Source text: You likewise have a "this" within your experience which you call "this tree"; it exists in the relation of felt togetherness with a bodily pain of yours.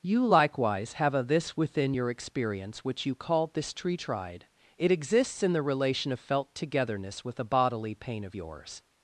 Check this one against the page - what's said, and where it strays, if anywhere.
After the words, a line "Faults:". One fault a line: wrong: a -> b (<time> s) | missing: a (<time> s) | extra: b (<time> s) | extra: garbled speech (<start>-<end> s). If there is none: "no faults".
You likewise have a "this" within your experience which you call "this tree"; tried it exists in the relation of felt togetherness with a bodily pain of yours.
Faults:
extra: tried (3.9 s)